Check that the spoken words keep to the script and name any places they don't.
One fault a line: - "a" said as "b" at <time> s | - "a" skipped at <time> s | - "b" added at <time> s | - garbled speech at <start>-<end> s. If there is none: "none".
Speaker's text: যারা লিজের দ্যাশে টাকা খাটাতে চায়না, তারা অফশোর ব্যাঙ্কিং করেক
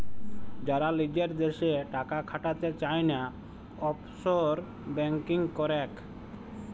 - "তারা" skipped at 3.2 s